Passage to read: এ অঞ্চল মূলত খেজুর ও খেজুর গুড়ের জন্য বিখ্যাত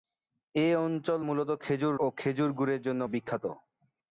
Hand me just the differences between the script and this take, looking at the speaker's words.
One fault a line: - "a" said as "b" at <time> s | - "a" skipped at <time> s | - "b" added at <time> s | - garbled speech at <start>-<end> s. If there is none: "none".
none